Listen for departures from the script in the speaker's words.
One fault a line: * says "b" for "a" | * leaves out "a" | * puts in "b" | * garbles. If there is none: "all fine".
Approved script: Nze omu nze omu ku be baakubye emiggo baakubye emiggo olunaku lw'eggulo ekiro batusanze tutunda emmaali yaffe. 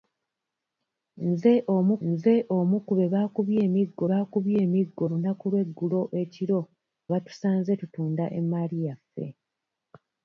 all fine